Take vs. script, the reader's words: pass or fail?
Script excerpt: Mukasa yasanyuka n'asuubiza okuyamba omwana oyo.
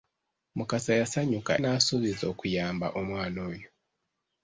pass